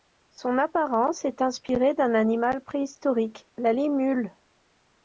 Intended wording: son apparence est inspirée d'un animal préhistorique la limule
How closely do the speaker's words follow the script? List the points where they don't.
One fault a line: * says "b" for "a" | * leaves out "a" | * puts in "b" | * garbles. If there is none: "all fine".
all fine